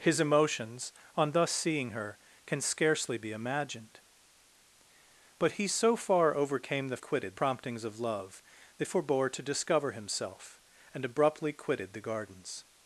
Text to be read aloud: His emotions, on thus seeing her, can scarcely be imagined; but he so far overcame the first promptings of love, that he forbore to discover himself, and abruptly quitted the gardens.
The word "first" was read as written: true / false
false